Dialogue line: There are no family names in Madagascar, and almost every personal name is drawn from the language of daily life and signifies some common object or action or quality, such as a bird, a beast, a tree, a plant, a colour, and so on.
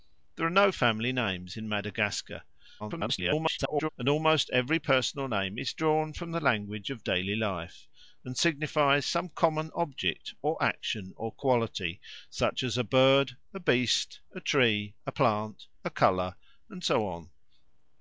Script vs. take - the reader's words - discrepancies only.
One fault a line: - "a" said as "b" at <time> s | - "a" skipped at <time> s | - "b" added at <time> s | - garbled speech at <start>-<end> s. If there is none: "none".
- garbled speech at 2.8-3.9 s